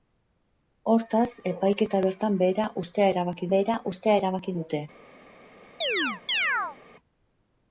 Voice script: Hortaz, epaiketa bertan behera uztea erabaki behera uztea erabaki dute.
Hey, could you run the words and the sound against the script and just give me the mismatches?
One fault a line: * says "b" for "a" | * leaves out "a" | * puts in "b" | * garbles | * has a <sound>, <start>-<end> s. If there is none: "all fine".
* has a chirp, 5.8-6.8 s